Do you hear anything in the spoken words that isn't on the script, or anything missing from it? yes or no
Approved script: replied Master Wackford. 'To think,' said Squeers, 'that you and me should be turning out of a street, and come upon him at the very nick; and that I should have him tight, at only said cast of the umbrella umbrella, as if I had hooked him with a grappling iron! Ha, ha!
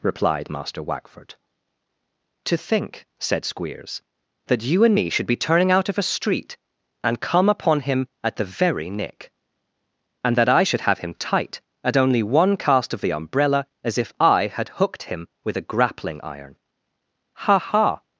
yes